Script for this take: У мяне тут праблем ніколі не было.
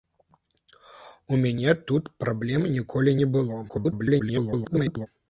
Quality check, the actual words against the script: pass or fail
fail